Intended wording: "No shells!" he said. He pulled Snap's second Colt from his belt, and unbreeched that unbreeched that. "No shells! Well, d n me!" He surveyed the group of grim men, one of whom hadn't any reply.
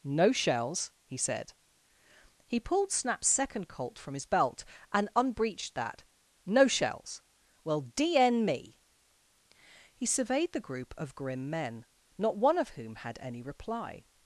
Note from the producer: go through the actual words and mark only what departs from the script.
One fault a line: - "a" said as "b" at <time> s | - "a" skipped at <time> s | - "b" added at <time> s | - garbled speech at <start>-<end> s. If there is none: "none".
- "unbreeched that" skipped at 6.0 s
- "not" added at 12.2 s
- "hadn't" said as "had" at 12.9 s